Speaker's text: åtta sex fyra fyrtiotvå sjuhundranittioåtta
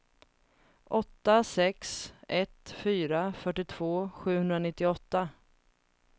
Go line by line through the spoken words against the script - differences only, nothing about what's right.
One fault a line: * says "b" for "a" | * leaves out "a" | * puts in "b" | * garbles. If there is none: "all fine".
* puts in "ett"